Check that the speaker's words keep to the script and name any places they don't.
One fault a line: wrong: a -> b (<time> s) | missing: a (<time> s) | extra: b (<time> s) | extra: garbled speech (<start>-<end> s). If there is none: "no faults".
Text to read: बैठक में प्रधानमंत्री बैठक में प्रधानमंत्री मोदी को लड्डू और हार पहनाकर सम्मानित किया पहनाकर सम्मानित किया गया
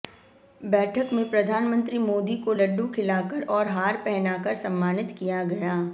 missing: बैठक में प्रधानमंत्री (2.0 s)
extra: खिलाकर (2.9 s)
missing: पहनाकर सम्मानित किया (5.4 s)